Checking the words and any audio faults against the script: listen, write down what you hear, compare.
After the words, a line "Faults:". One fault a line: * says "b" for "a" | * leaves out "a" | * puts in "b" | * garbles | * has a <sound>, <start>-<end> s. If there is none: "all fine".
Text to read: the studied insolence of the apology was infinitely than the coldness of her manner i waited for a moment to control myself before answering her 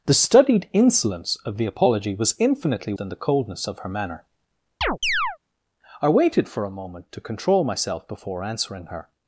the studied insolence of the apology was infinitely than the coldness of her manner i waited for a moment to control myself before answering her
Faults:
* has a chirp, 4.8-5.4 s